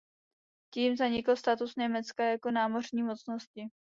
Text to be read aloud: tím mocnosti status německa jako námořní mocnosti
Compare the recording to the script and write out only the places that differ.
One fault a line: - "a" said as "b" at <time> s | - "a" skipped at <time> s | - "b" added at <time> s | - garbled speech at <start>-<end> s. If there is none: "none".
- "mocnosti" said as "zanikl" at 1.0 s